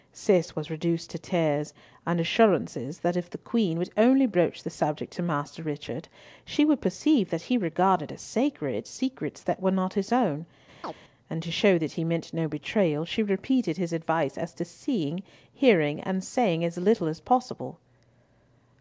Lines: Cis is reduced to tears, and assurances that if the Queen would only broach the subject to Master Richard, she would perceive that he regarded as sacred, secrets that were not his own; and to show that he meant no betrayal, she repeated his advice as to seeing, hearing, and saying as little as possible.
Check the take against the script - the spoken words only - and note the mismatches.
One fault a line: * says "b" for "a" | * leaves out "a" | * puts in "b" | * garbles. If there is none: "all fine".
* says "was" for "is"